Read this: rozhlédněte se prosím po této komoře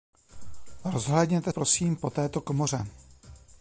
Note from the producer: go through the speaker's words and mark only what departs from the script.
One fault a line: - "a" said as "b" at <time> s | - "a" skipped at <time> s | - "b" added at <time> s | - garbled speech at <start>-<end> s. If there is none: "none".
- "se" skipped at 1.5 s